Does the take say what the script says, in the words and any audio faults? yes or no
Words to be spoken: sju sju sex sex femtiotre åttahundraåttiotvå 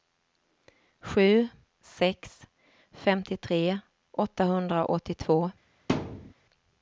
no